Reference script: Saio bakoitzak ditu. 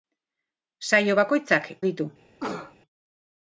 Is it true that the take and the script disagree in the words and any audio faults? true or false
true